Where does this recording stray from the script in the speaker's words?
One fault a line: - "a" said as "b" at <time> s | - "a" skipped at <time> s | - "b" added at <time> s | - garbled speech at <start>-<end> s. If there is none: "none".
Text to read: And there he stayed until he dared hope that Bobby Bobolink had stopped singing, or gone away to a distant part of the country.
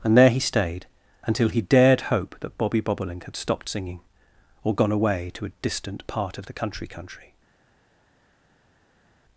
- "country" added at 6.9 s